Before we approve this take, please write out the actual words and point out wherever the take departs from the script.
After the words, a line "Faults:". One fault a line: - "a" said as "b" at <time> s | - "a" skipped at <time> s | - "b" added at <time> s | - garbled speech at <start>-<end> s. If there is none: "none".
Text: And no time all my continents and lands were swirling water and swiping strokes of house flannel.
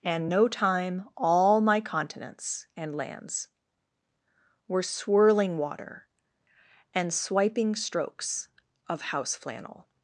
And no time all my continents and lands were swirling water and swiping strokes of house flannel.
Faults:
none